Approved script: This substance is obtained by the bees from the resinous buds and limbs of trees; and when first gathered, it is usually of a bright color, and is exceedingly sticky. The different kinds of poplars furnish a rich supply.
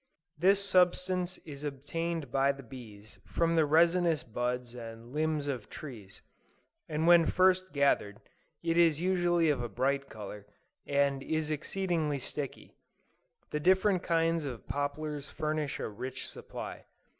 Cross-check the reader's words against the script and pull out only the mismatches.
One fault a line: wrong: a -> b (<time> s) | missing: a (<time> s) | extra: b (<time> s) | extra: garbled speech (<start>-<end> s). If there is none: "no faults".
no faults